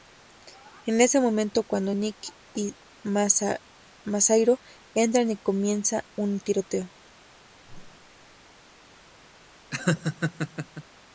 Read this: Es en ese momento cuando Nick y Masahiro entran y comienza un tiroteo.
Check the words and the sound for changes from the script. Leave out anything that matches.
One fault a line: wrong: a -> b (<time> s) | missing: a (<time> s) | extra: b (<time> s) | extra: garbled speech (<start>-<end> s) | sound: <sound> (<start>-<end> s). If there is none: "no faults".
sound: whoosh (7.6-8.4 s)
sound: laugh (9.7-10.8 s)